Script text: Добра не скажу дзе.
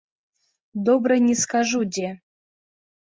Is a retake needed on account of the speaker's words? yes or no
no